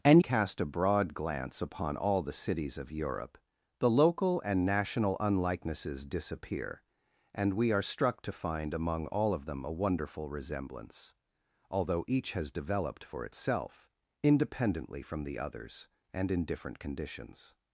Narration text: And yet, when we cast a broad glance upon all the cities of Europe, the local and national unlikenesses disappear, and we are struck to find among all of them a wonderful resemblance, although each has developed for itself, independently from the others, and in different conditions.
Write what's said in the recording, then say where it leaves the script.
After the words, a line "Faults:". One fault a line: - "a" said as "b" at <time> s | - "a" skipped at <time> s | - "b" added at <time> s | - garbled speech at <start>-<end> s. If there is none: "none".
And cast a broad glance upon all the cities of Europe, the local and national unlikenesses disappear, and we are struck to find among all of them a wonderful resemblance, although each has developed for itself, independently from the others, and in different conditions.
Faults:
- "yet when we" skipped at 0.2 s